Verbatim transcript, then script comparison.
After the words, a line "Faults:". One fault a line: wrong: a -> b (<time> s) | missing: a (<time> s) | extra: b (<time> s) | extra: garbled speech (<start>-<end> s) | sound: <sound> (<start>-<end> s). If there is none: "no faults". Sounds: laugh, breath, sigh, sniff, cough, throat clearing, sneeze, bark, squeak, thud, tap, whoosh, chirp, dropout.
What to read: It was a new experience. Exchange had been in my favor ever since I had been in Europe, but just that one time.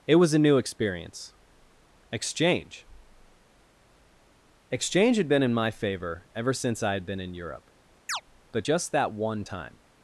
It was a new experience. Exchange Exchange had been in my favor ever since I had been in Europe, but just that one time.
Faults:
extra: Exchange (4.7 s)
sound: chirp (8.1-8.2 s)